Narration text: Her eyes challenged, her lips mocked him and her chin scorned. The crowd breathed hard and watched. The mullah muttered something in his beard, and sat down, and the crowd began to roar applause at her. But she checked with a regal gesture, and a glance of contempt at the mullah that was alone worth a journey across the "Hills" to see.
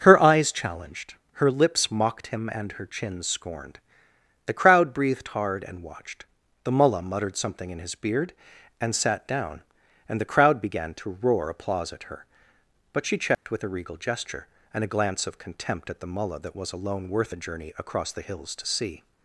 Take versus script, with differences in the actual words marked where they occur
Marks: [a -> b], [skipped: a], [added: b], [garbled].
Her eyes challenged, her lips mocked him and her chin scorned. The crowd breathed hard and watched. The mullah muttered something in his beard, and sat down, and the crowd began to roar applause at her. But she checked with a regal gesture, and a glance of contempt at the mullah that was alone worth a journey across the "Hills" to see.